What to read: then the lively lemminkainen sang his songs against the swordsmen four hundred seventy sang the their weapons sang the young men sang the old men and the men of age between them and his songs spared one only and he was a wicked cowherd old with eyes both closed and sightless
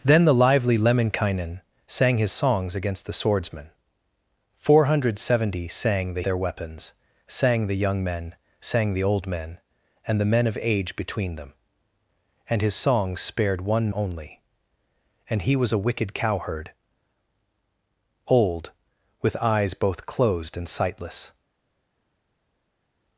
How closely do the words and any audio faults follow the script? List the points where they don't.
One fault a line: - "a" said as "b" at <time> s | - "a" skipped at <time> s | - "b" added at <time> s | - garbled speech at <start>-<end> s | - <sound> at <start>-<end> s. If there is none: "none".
none